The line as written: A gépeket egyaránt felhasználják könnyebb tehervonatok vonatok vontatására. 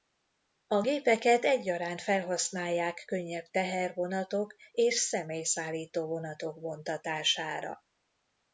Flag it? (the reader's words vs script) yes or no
yes